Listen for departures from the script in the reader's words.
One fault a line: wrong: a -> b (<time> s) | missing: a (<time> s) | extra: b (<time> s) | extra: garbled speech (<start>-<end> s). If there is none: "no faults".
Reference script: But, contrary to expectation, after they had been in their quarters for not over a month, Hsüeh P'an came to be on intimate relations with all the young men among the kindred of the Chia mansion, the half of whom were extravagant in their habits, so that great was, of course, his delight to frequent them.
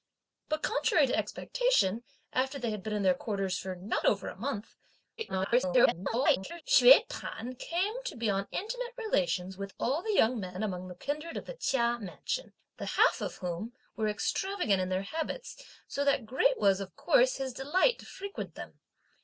extra: garbled speech (5.2-6.6 s)